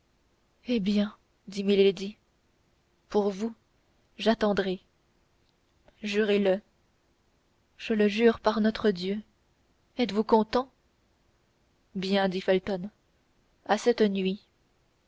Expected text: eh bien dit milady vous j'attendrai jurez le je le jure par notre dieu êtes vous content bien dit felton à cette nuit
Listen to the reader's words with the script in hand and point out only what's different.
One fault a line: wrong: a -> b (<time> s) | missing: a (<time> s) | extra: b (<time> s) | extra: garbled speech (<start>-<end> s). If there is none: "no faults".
extra: pour (3.1 s)